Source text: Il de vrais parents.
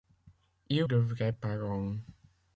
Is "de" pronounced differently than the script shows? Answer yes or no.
no